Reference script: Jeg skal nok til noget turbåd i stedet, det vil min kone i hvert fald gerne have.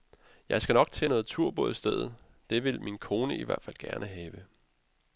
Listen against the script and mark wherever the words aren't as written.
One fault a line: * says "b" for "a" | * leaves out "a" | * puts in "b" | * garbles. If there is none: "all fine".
all fine